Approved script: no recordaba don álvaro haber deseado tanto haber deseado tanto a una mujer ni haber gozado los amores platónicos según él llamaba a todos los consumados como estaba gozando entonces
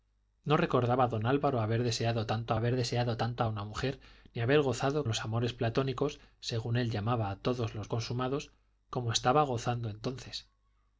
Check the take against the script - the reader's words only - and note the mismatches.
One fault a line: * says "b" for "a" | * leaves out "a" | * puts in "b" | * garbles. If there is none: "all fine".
all fine